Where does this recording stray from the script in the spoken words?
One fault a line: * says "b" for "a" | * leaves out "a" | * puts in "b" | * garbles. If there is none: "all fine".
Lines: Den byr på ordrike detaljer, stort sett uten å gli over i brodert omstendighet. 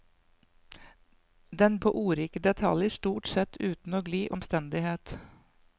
* leaves out "byr"
* leaves out "over i brodert"